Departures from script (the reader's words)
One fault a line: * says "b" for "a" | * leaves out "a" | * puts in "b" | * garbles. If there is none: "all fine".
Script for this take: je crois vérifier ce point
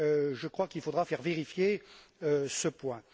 * puts in "qu'il faudra faire"